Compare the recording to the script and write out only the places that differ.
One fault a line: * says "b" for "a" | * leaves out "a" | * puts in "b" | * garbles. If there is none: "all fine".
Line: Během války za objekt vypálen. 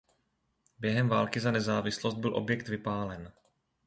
* puts in "nezávislost byl"